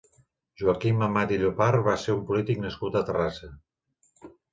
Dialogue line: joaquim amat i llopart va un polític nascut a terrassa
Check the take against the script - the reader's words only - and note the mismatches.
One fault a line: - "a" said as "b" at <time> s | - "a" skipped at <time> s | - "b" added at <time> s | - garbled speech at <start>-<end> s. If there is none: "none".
- "ser" added at 2.0 s